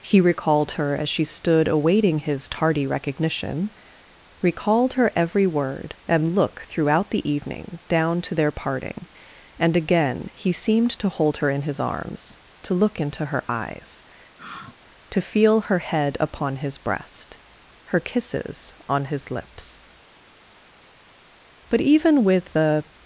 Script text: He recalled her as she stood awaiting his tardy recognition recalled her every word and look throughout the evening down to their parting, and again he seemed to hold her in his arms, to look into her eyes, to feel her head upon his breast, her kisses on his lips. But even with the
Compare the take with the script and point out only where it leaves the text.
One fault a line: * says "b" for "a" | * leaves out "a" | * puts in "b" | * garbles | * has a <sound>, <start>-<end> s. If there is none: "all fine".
* has a sigh, 14.4-14.7 s